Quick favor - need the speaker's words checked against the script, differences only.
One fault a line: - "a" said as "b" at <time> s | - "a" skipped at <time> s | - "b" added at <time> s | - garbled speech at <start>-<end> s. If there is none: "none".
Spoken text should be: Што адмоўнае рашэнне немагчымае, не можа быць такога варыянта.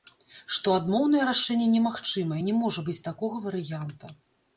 none